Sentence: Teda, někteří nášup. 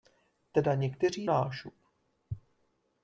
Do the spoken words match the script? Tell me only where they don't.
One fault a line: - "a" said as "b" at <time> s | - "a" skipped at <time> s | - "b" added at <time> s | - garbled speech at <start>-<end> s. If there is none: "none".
none